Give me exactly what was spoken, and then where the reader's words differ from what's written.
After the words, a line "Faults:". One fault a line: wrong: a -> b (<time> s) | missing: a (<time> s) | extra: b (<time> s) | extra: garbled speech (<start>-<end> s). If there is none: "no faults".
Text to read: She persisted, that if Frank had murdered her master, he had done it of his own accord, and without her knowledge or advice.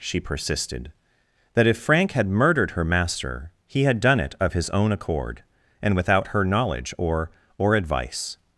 She persisted, that if Frank had murdered her master, he had done it of his own accord, and without her knowledge or or advice.
Faults:
extra: or (7.6 s)